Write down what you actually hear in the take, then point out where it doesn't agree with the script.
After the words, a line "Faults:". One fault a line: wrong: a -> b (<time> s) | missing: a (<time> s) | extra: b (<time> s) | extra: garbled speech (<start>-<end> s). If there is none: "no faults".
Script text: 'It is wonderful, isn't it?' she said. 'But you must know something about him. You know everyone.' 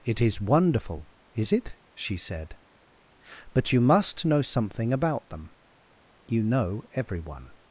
'It is wonderful, is it?' she said. 'But you must know something about them. You know everyone.'
Faults:
wrong: isn't -> is (1.3 s)
wrong: him -> them (5.3 s)